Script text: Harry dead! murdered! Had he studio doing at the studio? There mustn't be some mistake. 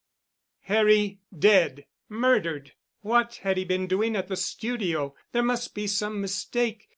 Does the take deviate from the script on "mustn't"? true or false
true